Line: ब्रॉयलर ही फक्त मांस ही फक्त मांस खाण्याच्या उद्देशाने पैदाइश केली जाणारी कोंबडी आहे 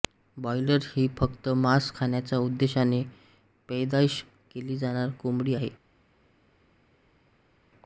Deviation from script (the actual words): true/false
true